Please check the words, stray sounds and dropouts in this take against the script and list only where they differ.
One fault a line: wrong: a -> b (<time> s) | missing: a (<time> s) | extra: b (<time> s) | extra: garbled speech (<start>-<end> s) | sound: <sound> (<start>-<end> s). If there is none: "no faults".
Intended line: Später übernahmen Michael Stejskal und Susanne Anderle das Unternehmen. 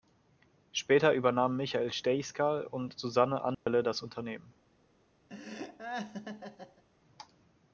sound: dropout (3.5-3.7 s)
sound: laugh (5.3-6.8 s)